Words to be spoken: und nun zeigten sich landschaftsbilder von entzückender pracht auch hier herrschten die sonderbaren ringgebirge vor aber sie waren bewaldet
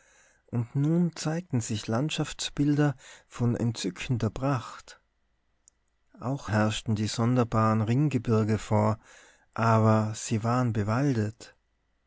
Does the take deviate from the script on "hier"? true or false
true